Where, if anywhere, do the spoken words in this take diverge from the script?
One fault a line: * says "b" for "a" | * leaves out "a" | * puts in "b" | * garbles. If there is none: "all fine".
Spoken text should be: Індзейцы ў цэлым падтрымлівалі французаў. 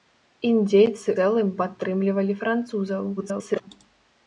* leaves out "ў"
* garbles